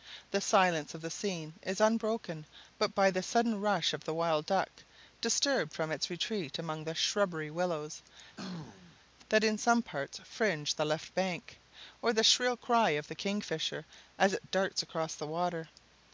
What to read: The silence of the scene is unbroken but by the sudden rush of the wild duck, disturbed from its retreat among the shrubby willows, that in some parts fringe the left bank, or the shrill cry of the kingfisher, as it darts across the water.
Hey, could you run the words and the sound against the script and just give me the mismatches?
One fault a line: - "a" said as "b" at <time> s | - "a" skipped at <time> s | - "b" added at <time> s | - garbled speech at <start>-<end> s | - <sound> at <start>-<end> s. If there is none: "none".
- throat clearing at 8.4-9.0 s